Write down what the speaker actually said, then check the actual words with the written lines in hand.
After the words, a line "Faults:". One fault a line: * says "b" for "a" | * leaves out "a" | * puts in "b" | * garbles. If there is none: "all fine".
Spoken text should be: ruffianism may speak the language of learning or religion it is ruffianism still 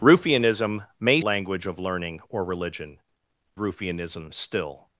ruffianism may language of learning or religion ruffianism still
Faults:
* leaves out "speak the"
* leaves out "it is"